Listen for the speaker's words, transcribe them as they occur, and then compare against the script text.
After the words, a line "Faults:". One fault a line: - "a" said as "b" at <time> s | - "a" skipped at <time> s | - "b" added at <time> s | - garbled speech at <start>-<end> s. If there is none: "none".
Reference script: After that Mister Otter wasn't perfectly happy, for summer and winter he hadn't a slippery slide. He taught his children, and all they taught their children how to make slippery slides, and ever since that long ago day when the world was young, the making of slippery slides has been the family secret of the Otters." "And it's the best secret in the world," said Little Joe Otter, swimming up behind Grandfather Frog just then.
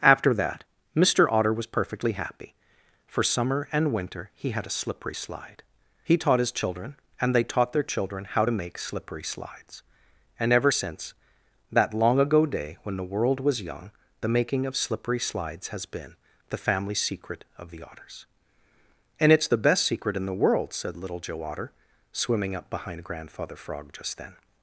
After that Mister Otter was perfectly happy, for summer and winter he had a slippery slide. He taught his children, and they taught their children how to make slippery slides, and ever since that long ago day when the world was young, the making of slippery slides has been the family secret of the Otters." "And it's the best secret in the world," said Little Joe Otter, swimming up behind Grandfather Frog just then.
Faults:
- "wasn't" said as "was" at 1.5 s
- "hadn't" said as "had" at 4.5 s
- "all" skipped at 7.3 s